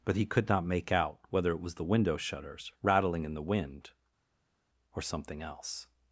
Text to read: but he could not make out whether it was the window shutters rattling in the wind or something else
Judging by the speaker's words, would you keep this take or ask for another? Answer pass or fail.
pass